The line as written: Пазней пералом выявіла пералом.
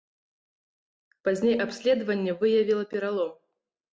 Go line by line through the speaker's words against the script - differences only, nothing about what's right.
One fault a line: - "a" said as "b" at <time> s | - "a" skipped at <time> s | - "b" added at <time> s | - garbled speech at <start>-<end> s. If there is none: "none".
- "пералом" said as "абследаванне" at 1.6 s